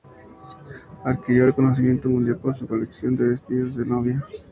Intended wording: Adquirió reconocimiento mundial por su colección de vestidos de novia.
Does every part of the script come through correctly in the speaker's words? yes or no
yes